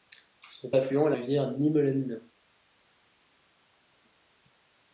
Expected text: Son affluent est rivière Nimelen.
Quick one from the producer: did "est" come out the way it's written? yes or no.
yes